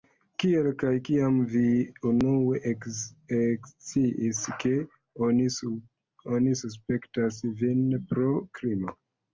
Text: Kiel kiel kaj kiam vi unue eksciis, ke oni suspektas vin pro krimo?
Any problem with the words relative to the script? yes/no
yes